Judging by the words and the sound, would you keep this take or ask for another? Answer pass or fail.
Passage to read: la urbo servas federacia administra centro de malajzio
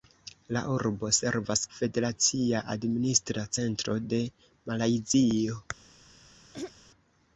fail